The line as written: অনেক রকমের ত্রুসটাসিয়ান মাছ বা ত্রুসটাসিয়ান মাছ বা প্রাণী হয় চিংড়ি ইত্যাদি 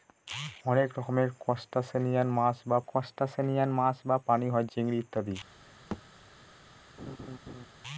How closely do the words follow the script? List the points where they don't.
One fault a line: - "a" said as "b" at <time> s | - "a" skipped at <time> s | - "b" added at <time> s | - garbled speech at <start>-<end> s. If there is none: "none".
none